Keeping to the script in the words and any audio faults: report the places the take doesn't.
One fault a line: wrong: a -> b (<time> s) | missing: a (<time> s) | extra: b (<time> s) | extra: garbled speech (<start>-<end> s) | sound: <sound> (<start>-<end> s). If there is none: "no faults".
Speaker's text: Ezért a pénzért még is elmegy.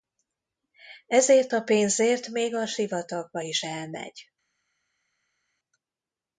extra: a sivatagba (2.6 s)